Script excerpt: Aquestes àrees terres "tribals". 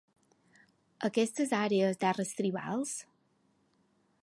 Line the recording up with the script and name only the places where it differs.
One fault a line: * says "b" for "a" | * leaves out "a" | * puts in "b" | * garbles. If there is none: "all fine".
all fine